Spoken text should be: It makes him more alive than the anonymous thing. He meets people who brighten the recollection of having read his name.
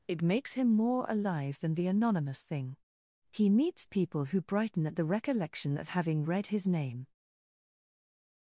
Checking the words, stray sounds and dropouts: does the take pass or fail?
fail